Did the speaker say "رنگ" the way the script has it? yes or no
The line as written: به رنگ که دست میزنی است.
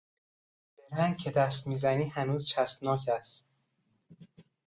yes